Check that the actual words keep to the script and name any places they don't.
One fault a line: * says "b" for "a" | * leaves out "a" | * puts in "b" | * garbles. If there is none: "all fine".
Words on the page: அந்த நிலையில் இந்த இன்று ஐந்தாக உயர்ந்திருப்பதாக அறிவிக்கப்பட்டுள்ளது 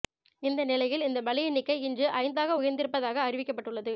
* says "இந்த" for "அந்த"
* puts in "பலி எண்ணிக்கை"